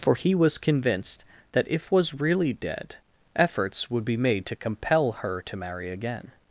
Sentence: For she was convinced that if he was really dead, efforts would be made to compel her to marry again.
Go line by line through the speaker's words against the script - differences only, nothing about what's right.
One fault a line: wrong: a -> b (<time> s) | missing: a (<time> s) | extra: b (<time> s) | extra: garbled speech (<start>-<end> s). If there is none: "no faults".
wrong: she -> he (0.1 s)
missing: he (1.9 s)